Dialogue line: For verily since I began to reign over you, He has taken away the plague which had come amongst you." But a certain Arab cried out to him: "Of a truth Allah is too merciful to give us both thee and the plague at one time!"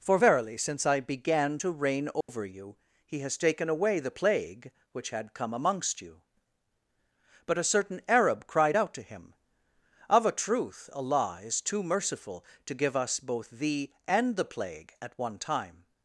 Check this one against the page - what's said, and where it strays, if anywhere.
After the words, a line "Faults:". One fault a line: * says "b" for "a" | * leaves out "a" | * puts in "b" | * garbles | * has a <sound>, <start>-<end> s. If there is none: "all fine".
For verily since I began to reign over you, He has taken away the plague which had come amongst you." But a certain Arab cried out to him: "Of a truth Allah is too merciful to give us both thee and the plague at one time!"
Faults:
* has a dropout, 2.2-2.3 s